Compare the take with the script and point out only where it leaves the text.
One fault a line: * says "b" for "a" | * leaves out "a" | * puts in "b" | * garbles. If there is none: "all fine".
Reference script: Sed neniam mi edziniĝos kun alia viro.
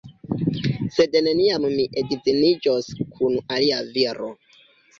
all fine